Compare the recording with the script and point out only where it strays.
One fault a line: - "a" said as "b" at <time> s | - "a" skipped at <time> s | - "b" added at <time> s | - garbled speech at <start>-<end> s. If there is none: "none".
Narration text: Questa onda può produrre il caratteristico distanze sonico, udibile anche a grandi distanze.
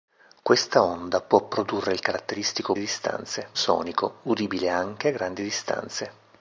none